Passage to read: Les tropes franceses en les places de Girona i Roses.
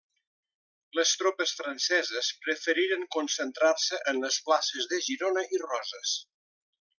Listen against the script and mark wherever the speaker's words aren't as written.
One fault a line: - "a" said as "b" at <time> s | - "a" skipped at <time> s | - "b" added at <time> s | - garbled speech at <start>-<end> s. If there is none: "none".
- "preferiren concentrar se" added at 2.5 s